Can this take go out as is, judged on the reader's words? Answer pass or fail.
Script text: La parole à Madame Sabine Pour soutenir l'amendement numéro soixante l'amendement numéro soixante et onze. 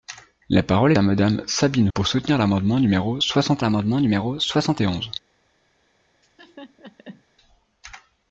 pass